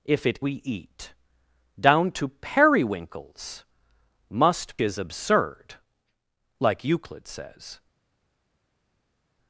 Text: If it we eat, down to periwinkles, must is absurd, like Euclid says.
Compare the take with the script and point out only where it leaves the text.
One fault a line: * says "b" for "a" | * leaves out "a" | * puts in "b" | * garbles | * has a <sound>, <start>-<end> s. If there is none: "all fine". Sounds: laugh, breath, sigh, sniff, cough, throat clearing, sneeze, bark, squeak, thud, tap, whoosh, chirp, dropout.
all fine